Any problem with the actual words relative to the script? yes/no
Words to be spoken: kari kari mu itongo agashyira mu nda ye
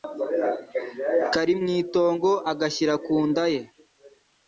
yes